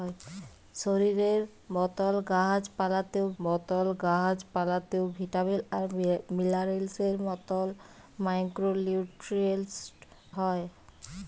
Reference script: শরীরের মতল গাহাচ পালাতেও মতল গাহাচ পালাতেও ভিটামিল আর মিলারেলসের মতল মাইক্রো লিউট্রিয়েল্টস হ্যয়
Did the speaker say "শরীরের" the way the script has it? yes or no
yes